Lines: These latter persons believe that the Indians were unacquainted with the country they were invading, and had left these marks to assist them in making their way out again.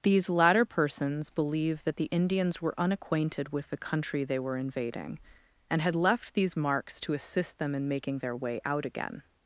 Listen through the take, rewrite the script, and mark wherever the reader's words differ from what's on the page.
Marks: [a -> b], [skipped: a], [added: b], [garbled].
These latter persons believe that the Indians were unacquainted with the country they were invading, and had left these marks to assist them in making their way out again.